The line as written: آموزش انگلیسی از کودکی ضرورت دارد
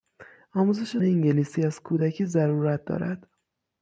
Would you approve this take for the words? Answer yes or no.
yes